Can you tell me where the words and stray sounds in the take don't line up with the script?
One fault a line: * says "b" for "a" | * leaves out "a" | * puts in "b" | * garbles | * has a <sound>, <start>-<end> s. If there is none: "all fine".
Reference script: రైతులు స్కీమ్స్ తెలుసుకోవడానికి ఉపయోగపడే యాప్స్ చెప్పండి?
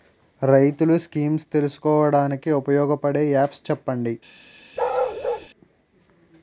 * has a bark, 4.8-5.5 s